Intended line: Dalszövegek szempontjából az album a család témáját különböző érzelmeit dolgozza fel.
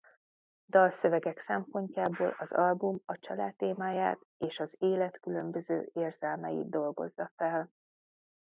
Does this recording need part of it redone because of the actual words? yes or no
yes